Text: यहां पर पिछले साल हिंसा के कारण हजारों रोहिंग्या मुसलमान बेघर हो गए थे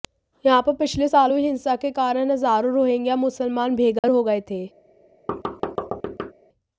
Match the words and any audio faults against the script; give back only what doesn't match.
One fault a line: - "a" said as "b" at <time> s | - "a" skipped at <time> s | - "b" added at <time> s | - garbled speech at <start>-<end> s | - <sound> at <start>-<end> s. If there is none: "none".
- "हुई" added at 1.3 s
- dropout at 4.0-4.0 s
- thud at 5.3-6.3 s